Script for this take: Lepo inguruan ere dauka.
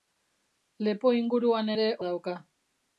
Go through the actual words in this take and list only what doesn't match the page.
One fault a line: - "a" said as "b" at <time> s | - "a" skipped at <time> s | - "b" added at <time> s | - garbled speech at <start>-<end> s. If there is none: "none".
none